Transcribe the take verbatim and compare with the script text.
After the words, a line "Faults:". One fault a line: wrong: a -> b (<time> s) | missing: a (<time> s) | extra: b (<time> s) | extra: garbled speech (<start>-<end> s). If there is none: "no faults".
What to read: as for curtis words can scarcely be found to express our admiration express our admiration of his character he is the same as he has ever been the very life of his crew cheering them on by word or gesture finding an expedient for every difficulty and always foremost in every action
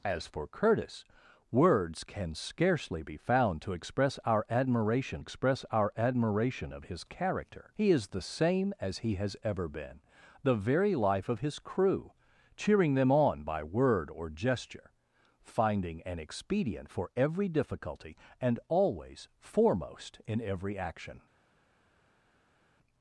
as for curtis words can scarcely be found to express our admiration express our admiration of his character he is the same as he has ever been the very life of his crew cheering them on by word or gesture finding an expedient for every difficulty and always foremost in every action
Faults:
no faults